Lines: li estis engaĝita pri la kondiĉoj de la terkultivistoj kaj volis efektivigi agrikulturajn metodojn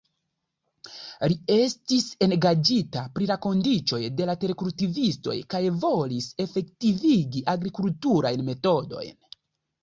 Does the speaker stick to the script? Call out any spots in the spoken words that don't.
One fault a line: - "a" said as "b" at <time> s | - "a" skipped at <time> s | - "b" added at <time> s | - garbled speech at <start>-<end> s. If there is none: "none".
none